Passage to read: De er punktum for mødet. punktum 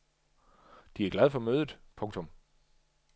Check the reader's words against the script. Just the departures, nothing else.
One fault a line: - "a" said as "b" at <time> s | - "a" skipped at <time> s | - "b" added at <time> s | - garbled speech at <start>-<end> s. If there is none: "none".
- "punktum" said as "glad" at 1.1 s